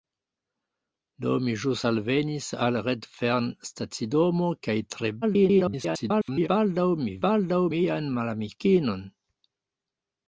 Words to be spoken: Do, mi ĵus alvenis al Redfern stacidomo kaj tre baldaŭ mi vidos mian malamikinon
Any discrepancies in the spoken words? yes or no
yes